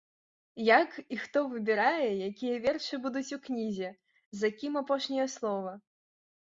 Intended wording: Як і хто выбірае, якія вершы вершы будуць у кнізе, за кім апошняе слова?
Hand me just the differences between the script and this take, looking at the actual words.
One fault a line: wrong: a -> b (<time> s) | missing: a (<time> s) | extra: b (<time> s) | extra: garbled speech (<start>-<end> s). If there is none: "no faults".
missing: вершы (3.0 s)